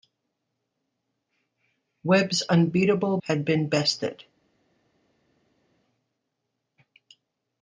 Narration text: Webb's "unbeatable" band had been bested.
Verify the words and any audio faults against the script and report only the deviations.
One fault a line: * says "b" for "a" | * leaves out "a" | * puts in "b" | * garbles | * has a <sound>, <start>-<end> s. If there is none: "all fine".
* leaves out "band"